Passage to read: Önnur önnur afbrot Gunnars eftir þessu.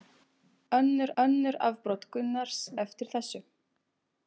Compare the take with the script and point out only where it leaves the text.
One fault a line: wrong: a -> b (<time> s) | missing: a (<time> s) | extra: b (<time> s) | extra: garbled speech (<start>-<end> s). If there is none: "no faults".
no faults